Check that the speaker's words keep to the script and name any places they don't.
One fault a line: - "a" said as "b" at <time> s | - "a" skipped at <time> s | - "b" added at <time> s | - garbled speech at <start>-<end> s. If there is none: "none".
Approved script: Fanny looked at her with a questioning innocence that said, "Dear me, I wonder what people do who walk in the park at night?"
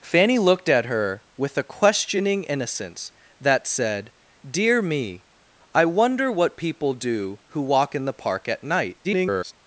- garbled speech at 9.0-9.5 s